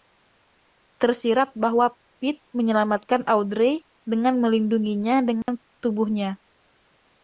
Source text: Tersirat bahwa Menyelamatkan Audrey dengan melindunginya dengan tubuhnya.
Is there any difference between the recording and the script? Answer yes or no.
yes